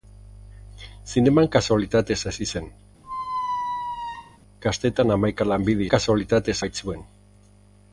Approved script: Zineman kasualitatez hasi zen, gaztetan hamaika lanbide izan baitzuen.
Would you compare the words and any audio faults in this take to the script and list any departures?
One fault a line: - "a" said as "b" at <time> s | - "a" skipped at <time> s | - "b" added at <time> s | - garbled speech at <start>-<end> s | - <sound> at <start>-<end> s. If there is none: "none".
- squeak at 3.0-4.4 s
- "izan" said as "kasualitatez" at 6.0 s